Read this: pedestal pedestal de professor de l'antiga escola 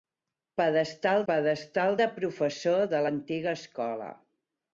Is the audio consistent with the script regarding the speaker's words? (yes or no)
yes